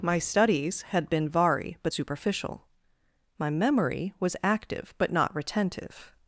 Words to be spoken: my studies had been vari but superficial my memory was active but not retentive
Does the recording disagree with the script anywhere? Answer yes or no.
no